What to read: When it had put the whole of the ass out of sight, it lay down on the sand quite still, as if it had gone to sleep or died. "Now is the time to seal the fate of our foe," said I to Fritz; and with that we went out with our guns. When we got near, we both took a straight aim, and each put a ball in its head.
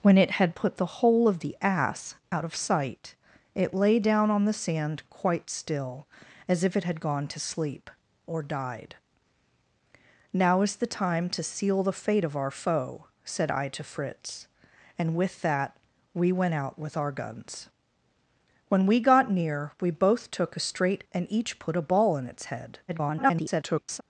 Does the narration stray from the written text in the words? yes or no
yes